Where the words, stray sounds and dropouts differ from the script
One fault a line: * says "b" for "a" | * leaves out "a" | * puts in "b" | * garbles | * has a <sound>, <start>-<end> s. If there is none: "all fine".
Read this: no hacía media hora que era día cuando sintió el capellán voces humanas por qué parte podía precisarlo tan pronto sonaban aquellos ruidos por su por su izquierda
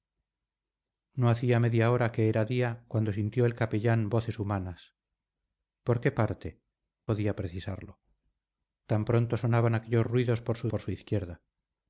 all fine